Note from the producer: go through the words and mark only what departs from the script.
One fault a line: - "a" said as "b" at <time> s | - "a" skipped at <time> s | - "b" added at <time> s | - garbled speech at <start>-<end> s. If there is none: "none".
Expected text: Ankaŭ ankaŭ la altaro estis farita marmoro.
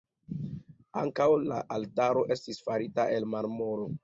- "ankaŭ" skipped at 1.3 s
- "el" added at 3.2 s